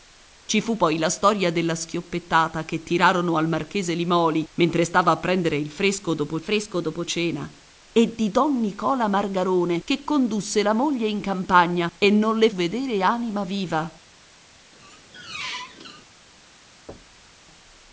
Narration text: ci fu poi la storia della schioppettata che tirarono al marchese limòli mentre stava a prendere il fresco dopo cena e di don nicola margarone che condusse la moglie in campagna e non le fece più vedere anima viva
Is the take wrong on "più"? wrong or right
wrong